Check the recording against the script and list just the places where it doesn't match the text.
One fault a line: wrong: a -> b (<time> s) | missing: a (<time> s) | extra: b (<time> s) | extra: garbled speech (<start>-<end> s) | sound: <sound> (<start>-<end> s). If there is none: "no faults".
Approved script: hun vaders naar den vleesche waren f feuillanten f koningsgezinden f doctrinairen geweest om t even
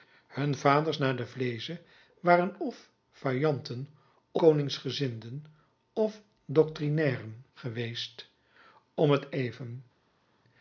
missing: f (3.9 s)